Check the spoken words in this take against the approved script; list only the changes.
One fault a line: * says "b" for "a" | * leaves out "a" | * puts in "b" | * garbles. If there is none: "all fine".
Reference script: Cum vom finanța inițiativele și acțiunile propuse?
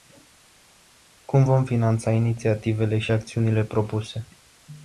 all fine